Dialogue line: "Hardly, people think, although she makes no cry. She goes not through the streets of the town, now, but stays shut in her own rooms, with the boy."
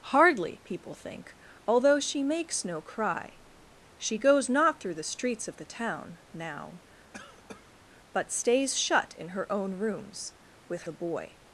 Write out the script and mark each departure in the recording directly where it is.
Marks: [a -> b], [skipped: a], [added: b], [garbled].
"Hardly, people think, although she makes no cry. She goes not through the streets of the town, now, but stays shut in her own rooms, with the boy."